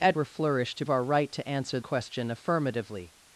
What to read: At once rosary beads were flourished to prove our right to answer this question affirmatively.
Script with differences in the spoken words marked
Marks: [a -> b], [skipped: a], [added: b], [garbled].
At [skipped: once rosary beads] were flourished to [skipped: prove] our right to answer [skipped: this] question affirmatively.